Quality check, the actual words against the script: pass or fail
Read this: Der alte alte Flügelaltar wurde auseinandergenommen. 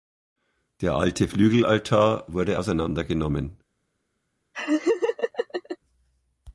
fail